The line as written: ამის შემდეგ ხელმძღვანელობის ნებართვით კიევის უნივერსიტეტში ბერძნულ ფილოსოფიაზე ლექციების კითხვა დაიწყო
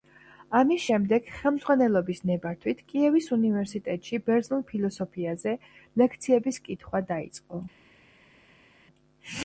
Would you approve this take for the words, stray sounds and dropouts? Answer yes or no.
yes